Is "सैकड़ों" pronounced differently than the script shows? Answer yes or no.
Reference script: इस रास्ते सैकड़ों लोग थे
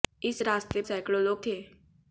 no